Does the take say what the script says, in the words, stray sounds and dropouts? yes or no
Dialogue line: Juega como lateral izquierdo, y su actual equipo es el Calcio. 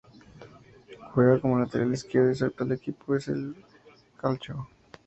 yes